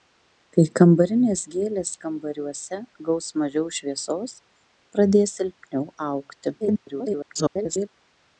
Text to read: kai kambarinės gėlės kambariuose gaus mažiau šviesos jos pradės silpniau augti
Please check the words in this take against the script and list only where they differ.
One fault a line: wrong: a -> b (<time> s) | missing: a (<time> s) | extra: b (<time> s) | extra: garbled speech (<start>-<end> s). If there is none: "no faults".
missing: jos (4.4 s)
extra: garbled speech (6.6-7.9 s)